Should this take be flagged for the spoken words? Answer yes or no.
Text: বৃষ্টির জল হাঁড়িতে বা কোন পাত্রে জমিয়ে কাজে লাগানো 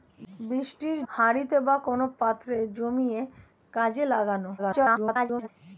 yes